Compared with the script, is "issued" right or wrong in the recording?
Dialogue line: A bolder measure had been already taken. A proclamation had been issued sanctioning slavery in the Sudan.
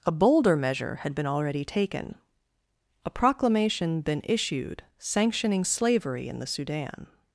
right